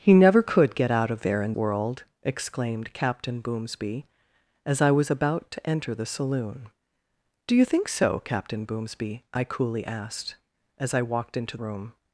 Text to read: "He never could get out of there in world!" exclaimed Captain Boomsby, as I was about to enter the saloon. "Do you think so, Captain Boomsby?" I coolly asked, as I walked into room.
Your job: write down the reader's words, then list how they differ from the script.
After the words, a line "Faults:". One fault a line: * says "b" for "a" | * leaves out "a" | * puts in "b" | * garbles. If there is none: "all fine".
"He never could get out of there in world!" exclaimed Captain Boomsby, as I was about to enter the saloon. "Do you think so, Captain Boomsby?" I coolly asked, as I walked into room.
Faults:
all fine